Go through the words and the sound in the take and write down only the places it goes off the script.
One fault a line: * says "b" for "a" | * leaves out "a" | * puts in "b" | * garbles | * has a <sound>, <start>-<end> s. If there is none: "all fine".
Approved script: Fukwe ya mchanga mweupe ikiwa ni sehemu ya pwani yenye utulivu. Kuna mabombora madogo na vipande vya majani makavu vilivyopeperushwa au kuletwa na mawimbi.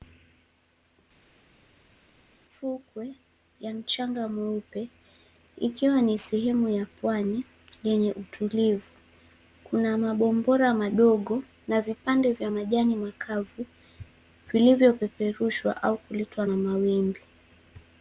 all fine